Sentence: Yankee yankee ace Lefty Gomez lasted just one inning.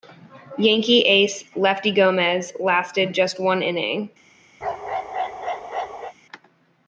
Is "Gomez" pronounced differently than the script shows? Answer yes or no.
no